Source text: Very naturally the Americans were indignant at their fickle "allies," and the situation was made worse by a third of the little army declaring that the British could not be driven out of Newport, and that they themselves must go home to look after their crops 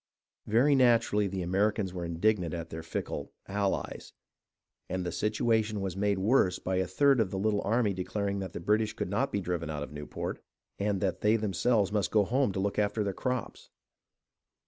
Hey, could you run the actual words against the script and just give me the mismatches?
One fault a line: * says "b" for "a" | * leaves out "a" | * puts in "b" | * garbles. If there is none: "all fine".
all fine